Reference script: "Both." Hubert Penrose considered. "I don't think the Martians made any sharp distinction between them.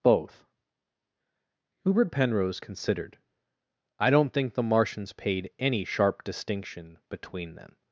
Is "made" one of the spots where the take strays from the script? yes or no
yes